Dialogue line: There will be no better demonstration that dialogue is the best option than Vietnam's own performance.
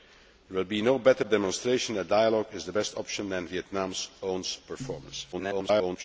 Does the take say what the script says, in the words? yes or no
no